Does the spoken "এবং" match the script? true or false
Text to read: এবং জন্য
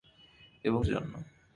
true